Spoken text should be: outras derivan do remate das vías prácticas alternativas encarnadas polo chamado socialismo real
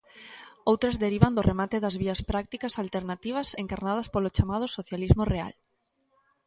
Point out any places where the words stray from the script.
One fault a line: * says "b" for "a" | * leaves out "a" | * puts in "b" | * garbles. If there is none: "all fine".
all fine